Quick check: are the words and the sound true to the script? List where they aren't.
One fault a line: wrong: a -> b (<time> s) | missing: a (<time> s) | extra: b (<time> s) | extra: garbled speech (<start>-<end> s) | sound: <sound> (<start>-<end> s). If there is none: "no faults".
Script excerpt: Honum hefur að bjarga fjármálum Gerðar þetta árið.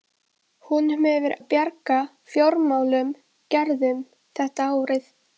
no faults